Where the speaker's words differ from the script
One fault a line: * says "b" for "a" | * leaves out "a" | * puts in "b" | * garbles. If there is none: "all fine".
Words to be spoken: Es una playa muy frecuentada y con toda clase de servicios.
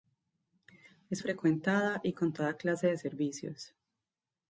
* leaves out "una playa muy"